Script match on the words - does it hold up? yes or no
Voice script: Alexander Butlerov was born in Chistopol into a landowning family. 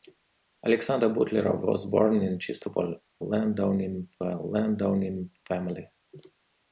no